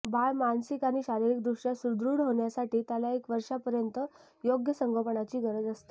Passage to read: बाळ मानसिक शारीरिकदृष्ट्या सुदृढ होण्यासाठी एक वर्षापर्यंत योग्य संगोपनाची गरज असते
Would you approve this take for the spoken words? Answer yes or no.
no